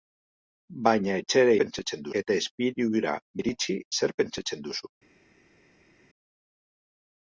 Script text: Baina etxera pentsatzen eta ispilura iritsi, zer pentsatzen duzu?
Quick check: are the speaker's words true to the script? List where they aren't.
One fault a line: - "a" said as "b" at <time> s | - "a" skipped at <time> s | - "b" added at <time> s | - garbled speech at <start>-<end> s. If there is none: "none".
none